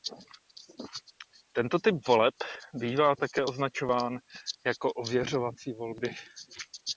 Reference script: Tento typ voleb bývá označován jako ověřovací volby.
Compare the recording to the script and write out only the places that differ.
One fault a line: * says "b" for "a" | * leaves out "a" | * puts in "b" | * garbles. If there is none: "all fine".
* puts in "také"